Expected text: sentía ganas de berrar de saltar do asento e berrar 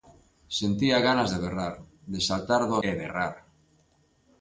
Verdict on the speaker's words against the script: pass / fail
fail